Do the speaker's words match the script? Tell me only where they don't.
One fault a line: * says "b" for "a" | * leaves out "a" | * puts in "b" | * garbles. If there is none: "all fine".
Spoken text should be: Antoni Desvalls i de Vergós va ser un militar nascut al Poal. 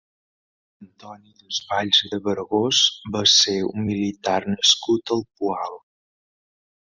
all fine